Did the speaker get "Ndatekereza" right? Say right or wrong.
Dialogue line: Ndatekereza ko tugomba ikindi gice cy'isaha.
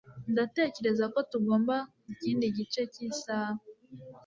right